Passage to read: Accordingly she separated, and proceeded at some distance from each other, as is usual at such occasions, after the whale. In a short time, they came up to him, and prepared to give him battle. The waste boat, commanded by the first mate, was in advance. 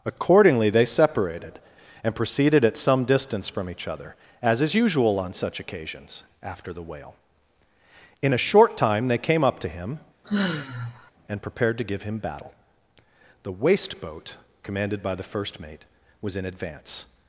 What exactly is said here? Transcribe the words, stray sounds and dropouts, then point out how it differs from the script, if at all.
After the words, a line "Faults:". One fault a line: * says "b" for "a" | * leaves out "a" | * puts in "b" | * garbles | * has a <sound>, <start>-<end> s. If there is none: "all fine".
Accordingly they separated, and proceeded at some distance from each other, as is usual on such occasions, after the whale. In a short time, they came up to him, and prepared to give him battle. The waste boat, commanded by the first mate, was in advance.
Faults:
* says "they" for "she"
* says "on" for "at"
* has a sigh, 10.2-11.1 s